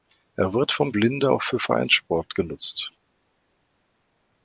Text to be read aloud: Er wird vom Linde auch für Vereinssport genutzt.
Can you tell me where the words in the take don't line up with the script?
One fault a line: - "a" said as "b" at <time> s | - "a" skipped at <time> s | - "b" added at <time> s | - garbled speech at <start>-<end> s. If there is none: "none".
none